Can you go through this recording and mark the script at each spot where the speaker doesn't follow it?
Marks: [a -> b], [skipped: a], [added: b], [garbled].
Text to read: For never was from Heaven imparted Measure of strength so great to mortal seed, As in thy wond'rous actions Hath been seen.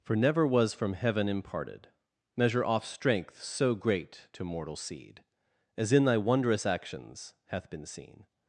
For never was from Heaven imparted Measure [of -> off] strength so great to mortal seed, As in thy wond'rous actions Hath been seen.